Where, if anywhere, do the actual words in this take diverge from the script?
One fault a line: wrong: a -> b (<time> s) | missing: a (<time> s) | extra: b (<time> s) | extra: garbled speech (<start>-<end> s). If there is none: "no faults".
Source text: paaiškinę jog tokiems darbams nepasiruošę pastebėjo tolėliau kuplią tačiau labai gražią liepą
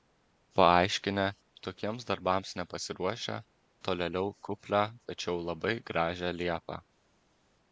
missing: jog (1.2 s)
missing: pastebėjo (3.4 s)